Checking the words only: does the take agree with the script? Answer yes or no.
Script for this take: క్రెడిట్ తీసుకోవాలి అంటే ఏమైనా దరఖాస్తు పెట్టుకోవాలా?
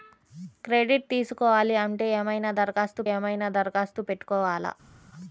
no